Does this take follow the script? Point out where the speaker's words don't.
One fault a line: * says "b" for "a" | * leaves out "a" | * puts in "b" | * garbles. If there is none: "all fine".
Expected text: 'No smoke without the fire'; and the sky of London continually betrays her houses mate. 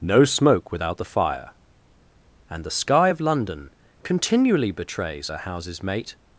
all fine